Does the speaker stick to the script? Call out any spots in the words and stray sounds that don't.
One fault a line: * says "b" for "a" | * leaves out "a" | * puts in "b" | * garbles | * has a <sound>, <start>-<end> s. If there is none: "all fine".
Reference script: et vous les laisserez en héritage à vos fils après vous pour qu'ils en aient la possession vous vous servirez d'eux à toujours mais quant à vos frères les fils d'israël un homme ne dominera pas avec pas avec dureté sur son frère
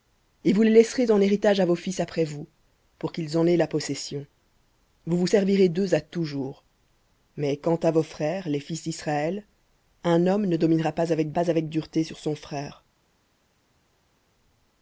all fine